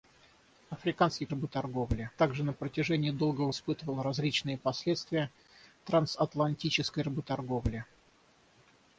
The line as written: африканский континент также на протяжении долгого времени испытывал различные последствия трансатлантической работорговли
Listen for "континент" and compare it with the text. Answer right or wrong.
wrong